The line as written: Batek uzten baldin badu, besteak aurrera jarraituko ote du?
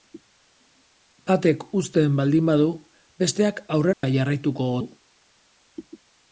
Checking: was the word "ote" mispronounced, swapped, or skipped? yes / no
yes